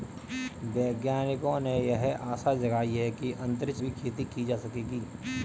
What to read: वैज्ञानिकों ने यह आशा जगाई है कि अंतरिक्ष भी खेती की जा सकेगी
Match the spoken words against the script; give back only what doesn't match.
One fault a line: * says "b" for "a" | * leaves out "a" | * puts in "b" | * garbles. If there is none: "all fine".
all fine